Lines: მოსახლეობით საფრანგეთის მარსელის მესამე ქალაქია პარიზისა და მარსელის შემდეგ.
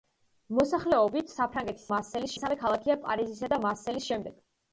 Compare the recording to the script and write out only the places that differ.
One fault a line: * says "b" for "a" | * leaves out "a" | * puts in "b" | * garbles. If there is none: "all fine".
all fine